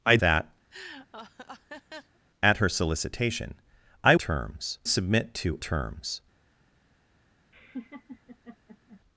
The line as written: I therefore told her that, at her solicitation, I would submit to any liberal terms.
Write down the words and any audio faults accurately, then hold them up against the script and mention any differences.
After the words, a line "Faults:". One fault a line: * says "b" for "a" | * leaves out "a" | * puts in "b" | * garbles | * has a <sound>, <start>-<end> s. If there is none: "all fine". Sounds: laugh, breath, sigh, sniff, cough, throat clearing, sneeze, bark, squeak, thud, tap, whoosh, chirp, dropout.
I that, at her solicitation, I terms submit to terms.
Faults:
* leaves out "therefore told her"
* has a laugh, 0.7-2.2 s
* says "terms" for "would"
* leaves out "any liberal"
* has a laugh, 7.5-9.0 s